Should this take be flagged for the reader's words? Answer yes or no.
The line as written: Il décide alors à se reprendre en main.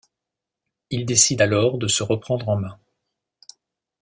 yes